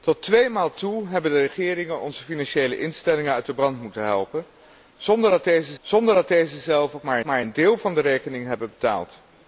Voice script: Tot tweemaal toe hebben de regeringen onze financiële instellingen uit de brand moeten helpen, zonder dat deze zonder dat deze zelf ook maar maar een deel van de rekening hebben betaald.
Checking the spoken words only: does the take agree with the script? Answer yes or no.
yes